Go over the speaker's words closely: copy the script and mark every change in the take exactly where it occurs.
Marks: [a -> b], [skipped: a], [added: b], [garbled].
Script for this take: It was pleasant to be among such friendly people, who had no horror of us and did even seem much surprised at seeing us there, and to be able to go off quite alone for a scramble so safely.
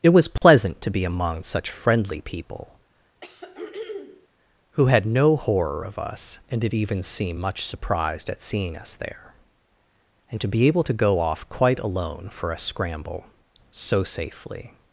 It was pleasant to be among such friendly people, who had no horror of us and did even seem much surprised at seeing us there, and to be able to go off quite alone for a scramble so safely.